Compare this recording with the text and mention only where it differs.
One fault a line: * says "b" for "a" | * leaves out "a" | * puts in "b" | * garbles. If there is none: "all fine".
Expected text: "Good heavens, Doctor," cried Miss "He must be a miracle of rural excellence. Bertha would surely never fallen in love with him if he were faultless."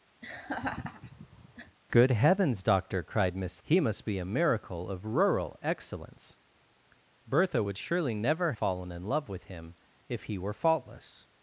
all fine